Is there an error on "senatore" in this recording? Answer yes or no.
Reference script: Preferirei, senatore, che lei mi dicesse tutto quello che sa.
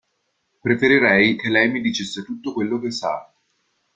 yes